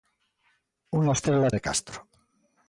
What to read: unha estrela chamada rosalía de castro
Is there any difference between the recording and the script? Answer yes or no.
yes